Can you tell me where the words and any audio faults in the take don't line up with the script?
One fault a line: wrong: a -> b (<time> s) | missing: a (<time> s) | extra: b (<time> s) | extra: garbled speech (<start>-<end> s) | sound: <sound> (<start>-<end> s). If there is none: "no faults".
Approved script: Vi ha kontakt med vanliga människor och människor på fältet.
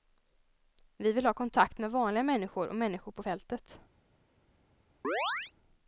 extra: vill (1.1 s)
sound: chirp (5.0-5.5 s)